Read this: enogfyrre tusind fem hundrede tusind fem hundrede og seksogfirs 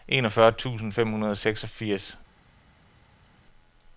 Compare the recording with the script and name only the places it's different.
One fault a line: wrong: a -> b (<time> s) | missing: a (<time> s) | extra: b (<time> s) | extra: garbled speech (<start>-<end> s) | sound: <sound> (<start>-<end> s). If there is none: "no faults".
missing: tusind fem hundrede (1.3 s)